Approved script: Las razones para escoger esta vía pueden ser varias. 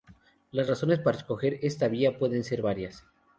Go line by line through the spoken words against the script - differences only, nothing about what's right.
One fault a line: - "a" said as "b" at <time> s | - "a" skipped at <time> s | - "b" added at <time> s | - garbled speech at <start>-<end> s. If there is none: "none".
none